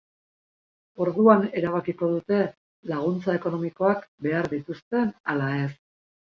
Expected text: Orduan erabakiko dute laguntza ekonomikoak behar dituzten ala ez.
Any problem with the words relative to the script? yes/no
no